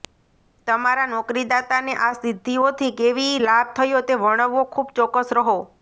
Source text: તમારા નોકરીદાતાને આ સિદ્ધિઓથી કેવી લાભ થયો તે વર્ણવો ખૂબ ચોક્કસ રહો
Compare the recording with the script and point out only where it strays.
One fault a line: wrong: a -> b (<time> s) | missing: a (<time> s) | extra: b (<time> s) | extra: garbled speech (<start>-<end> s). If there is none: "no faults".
no faults